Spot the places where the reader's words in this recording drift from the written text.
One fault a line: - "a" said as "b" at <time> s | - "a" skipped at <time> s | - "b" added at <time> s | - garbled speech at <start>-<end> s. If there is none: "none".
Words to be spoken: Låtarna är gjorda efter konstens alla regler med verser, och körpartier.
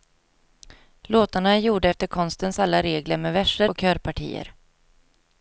none